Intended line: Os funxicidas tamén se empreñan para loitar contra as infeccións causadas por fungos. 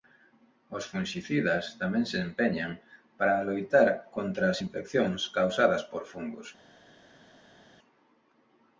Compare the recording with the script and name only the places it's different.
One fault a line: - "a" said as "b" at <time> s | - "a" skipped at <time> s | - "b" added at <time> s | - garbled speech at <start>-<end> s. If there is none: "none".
none